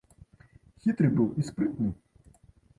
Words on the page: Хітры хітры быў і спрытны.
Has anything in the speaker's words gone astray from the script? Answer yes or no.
yes